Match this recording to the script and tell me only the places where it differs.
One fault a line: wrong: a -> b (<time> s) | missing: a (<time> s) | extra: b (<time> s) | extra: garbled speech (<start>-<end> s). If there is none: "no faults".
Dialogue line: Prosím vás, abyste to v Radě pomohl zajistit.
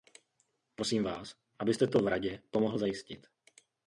no faults